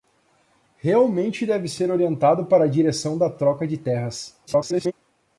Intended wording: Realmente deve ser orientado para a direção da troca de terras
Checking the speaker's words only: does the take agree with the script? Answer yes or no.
no